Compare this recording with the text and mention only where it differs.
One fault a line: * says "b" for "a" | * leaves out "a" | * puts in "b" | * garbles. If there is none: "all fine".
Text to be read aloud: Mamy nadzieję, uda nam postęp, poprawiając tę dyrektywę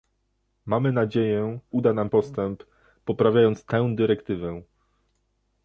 all fine